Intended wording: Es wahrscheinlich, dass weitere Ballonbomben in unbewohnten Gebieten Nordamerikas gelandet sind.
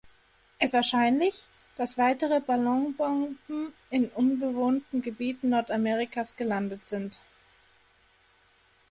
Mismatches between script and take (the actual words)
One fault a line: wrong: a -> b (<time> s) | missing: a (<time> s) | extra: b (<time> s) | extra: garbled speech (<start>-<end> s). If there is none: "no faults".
no faults